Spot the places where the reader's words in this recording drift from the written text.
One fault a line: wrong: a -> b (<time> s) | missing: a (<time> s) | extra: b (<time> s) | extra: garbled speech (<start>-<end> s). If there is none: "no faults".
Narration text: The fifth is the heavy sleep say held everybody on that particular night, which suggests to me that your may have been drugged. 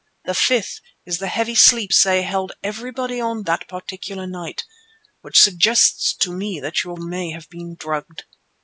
no faults